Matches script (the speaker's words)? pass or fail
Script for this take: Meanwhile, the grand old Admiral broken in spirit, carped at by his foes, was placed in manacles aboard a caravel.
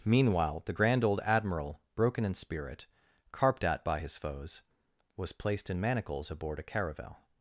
pass